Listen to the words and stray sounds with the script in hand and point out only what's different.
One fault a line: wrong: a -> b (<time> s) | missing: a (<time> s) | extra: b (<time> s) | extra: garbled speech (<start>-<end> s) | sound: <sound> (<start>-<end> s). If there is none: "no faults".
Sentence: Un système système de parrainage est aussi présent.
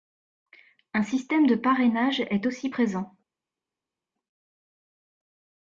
missing: système (1.5 s)